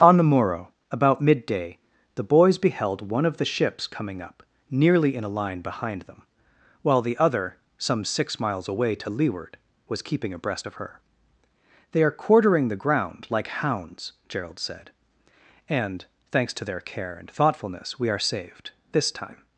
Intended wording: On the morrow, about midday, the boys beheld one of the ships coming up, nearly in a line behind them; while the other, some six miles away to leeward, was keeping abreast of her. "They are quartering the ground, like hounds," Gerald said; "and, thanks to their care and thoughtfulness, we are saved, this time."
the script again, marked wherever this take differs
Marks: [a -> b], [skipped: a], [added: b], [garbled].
On the morrow, about midday, the boys beheld one of the ships coming up, nearly in a line behind them; while the other, some six miles away to leeward, was keeping abreast of her. "They are quartering the ground, like hounds," Gerald said; "and, thanks to their care and thoughtfulness, we are saved, this time."